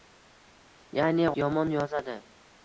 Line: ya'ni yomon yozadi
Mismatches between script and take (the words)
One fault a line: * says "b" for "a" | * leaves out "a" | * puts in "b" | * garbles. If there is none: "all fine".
all fine